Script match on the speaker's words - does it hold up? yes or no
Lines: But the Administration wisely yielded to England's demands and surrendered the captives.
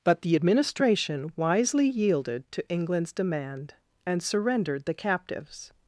no